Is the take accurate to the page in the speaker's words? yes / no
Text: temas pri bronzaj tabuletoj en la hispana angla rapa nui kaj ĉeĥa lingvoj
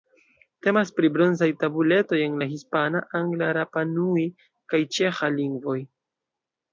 yes